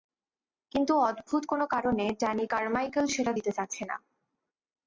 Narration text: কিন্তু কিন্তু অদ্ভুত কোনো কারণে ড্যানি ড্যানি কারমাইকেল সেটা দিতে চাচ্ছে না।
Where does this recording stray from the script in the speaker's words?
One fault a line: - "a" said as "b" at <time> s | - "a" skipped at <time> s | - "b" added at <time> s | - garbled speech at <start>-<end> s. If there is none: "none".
- "কিন্তু" skipped at 0.9 s
- "ড্যানি" skipped at 2.5 s